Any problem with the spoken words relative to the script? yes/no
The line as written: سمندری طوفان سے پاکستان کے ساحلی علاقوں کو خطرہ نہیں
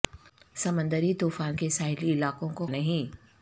yes